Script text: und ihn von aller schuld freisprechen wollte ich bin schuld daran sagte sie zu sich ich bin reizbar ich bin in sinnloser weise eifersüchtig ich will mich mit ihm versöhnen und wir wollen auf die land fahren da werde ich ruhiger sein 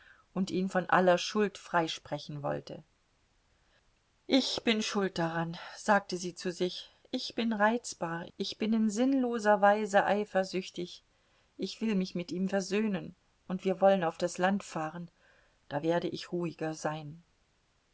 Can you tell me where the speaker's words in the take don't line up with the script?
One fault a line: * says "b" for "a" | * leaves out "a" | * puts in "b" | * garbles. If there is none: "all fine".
* says "das" for "die"